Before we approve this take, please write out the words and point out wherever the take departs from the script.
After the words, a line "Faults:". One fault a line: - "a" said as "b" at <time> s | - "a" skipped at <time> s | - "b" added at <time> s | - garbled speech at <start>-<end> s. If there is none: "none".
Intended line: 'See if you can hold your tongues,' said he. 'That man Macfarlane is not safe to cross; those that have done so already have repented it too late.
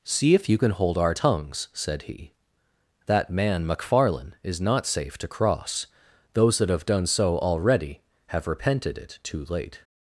'See if you can hold our tongues,' said he. 'That man Macfarlane is not safe to cross; those that have done so already have repented it too late.
Faults:
- "your" said as "our" at 1.0 s